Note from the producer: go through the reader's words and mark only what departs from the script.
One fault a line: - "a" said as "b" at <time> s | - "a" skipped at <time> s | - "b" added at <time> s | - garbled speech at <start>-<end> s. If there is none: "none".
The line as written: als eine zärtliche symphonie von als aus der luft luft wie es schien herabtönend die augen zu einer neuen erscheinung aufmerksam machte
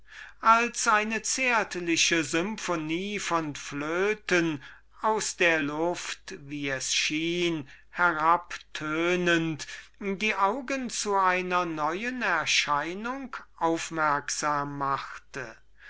- "als" said as "flöten" at 3.5 s
- "luft" skipped at 6.3 s